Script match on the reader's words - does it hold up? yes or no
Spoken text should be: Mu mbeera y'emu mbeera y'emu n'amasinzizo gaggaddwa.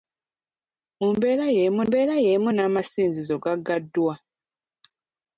yes